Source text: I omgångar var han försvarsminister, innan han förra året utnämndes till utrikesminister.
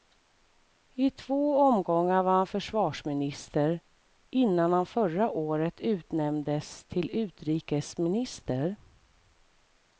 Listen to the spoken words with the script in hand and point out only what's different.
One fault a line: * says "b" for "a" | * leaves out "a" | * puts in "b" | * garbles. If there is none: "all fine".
* puts in "två"